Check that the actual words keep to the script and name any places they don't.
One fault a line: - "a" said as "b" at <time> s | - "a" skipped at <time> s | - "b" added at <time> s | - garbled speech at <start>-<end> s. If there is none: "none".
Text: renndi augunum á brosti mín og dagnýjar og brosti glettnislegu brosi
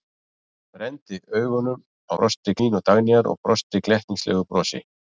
none